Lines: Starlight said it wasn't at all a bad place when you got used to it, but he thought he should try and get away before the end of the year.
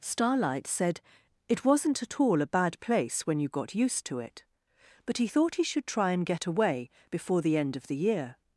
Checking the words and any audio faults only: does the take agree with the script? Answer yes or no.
yes